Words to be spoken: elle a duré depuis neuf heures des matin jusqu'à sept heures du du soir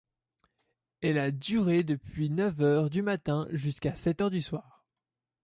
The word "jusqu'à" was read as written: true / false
true